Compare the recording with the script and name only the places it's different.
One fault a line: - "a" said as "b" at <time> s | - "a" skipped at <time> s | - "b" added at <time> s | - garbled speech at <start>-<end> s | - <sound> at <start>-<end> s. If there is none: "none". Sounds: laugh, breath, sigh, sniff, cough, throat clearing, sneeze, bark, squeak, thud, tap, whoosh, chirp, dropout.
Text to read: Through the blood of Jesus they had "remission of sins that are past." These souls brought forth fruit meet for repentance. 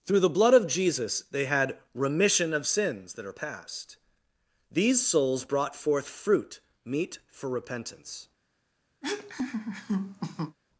- laugh at 9.0-10.6 s